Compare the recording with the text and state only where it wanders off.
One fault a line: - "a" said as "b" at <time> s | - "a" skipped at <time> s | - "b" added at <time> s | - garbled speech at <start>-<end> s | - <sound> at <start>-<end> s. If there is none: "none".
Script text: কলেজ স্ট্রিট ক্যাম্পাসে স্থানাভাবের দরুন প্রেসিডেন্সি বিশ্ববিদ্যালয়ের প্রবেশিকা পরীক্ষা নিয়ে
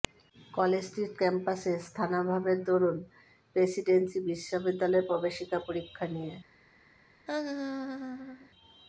- laugh at 7.3-8.5 s